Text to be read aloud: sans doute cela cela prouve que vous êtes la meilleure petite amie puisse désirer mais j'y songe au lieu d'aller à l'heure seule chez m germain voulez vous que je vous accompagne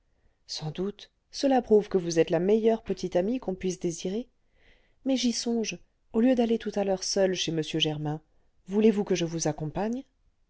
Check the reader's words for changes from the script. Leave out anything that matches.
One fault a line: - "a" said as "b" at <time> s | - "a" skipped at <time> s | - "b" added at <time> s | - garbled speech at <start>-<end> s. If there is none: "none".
- "cela" skipped at 1.6 s
- "qu'on" added at 3.4 s
- "tout" added at 6.6 s